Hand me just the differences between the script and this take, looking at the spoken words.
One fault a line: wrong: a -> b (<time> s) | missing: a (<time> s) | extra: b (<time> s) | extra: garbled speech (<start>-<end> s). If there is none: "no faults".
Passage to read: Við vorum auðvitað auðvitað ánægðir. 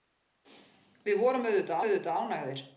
no faults